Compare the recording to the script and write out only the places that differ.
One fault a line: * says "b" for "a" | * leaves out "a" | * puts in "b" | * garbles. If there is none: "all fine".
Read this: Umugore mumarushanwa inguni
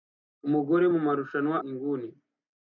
all fine